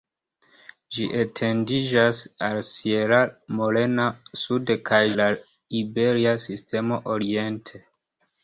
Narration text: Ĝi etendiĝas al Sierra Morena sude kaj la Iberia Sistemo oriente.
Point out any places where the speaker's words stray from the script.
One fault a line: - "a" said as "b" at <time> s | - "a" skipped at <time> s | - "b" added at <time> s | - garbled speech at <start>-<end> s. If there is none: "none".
none